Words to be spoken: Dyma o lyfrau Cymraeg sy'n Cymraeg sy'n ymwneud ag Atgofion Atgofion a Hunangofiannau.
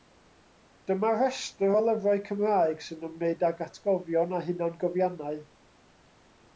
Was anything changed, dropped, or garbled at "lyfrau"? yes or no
no